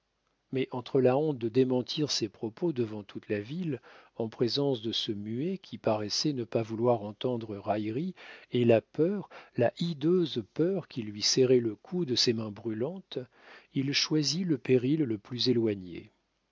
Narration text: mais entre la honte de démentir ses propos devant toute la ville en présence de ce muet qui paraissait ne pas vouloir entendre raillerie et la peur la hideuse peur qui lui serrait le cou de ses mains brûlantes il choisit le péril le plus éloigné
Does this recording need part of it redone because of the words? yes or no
no